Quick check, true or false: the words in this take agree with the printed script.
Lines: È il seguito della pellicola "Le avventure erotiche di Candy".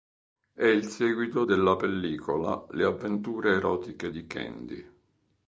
true